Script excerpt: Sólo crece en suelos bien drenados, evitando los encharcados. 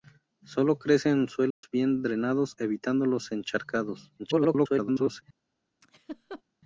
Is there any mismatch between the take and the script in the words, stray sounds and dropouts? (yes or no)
yes